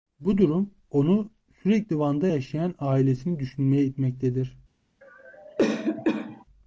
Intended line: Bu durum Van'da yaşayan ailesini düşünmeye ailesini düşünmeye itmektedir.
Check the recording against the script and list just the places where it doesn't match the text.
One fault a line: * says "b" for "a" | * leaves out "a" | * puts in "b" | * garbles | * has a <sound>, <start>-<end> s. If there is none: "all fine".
* puts in "onu sürekli"
* leaves out "ailesini düşünmeye"
* has a cough, 5.0-6.4 s